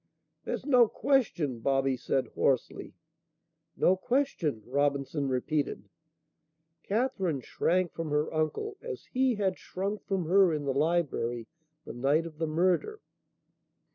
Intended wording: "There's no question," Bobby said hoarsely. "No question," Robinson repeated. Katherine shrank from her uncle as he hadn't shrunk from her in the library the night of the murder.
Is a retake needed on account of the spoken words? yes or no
yes